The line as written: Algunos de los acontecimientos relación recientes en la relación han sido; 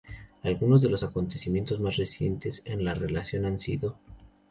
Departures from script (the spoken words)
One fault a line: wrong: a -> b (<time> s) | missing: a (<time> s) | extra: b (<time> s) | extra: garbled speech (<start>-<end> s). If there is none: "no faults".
wrong: relación -> más (1.8 s)